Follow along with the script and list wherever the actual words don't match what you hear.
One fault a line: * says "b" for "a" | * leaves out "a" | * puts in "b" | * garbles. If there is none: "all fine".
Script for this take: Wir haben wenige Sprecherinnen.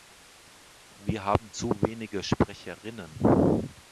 * puts in "zu"